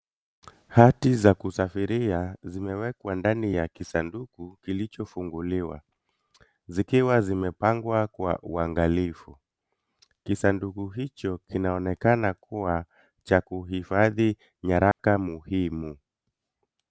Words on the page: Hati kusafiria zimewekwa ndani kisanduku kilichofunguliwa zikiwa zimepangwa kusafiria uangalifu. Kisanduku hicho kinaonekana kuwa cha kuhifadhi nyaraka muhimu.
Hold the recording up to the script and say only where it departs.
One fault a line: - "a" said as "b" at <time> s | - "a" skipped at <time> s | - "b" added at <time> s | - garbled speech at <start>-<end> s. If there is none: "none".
- "za" added at 1.1 s
- "ya" added at 3.5 s
- "kusafiria" said as "kwa" at 8.1 s